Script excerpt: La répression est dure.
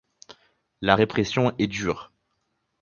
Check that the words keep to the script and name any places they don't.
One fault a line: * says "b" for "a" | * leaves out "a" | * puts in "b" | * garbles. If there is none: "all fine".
all fine